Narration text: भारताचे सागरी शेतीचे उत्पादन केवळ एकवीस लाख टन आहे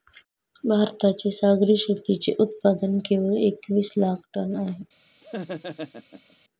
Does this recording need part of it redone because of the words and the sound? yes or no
yes